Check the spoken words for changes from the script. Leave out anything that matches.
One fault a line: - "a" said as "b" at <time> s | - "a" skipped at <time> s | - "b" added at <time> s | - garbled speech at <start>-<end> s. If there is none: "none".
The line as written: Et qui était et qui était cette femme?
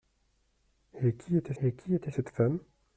none